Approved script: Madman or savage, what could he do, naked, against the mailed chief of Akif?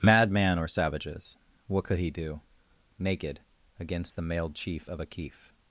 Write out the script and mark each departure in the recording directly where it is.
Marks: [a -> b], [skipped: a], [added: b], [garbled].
Madman or [savage, -> savages] what could he do, naked, against the mailed chief of Akif?